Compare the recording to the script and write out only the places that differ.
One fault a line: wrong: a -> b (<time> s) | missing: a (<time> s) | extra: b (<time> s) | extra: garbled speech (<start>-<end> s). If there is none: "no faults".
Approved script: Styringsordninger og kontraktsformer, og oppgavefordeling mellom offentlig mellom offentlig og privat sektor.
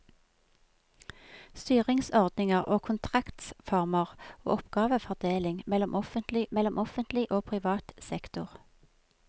no faults